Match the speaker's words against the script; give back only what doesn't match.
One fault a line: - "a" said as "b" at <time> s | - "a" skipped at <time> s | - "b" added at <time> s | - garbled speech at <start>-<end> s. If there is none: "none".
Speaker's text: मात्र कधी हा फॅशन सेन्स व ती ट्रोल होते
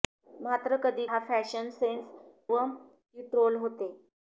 none